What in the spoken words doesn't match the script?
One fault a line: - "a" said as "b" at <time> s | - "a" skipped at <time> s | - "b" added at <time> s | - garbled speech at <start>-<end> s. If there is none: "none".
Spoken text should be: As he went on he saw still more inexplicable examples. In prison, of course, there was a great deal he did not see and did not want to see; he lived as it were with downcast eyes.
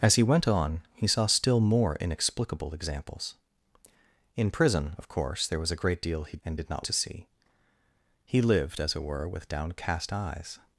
- "did not see" skipped at 6.4 s
- "want" skipped at 6.9 s